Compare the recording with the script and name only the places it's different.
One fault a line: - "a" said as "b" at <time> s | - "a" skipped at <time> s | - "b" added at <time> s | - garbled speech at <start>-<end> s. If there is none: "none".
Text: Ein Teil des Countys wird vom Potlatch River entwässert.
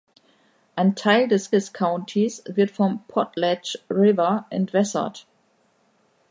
- "des" added at 1.5 s